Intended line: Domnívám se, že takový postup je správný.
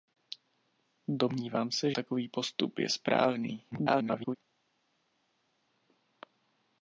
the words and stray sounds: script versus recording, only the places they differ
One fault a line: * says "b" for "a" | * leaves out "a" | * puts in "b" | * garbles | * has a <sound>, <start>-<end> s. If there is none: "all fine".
* leaves out "že"
* garbles